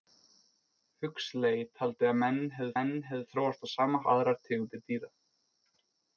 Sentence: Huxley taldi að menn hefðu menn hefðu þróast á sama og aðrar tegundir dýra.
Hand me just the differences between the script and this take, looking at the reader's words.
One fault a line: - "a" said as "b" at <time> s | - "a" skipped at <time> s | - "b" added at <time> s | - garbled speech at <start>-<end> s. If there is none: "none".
none